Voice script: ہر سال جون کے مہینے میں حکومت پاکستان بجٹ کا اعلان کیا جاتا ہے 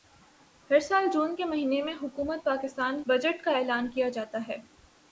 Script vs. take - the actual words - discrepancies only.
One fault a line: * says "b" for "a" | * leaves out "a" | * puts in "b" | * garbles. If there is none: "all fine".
all fine